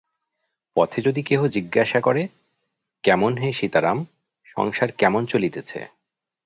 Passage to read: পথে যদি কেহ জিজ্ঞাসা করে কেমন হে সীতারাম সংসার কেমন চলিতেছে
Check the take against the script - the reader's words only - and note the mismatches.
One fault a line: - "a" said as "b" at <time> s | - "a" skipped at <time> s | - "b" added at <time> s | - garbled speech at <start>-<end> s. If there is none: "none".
none